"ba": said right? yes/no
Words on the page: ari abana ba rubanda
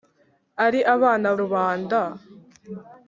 no